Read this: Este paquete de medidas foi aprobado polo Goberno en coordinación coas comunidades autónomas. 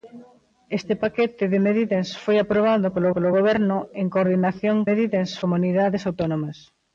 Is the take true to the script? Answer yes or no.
no